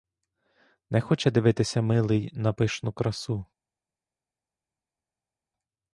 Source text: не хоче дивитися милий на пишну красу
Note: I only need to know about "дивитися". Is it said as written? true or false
true